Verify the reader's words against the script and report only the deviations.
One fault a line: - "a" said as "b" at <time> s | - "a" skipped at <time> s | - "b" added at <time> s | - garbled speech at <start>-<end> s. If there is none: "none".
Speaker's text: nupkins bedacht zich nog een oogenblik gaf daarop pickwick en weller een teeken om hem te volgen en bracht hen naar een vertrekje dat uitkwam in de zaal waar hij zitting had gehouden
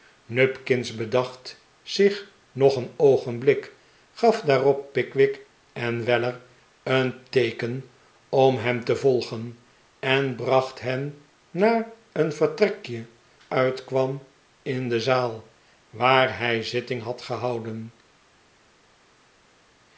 - "dat" skipped at 13.1 s